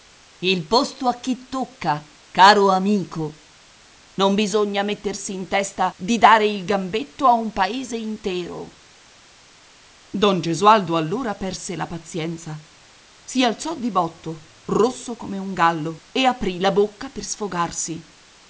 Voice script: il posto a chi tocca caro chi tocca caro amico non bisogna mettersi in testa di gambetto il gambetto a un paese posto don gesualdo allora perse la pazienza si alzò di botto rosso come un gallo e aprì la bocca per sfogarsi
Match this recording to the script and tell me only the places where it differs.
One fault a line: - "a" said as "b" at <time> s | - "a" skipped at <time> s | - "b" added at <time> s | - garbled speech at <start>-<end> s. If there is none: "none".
- "chi tocca caro" skipped at 2.7 s
- "gambetto" said as "dare" at 6.2 s
- "posto" said as "intero" at 8.0 s